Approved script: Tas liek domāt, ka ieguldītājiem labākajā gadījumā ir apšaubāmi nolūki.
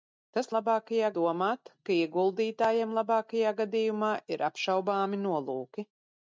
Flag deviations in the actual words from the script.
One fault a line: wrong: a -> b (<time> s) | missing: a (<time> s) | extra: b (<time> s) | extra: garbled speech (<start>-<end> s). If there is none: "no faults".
wrong: liek -> labākajā (0.6 s)